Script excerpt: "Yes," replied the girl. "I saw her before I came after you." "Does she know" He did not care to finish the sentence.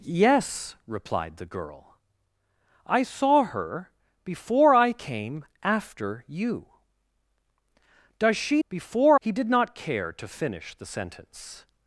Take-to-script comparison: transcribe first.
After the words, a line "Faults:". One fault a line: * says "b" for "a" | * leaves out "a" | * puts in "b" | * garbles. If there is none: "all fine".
"Yes," replied the girl. "I saw her before I came after you." "Does she before" He did not care to finish the sentence.
Faults:
* says "before" for "know"